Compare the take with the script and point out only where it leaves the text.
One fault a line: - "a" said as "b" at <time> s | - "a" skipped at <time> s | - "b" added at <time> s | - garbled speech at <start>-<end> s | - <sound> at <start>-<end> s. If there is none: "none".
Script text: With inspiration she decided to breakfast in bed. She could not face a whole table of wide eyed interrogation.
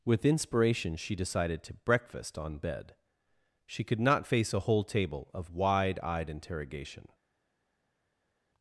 - "in" said as "on" at 2.4 s